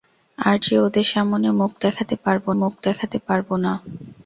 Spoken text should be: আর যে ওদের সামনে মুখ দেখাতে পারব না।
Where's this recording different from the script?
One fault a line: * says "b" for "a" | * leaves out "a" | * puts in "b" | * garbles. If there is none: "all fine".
* puts in "মুখ দেখাতে পারব"